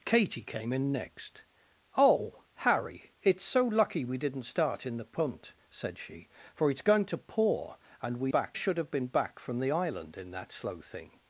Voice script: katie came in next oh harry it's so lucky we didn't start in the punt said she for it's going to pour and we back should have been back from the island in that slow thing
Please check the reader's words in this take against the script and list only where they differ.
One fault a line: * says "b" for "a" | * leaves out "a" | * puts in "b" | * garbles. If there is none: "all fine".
all fine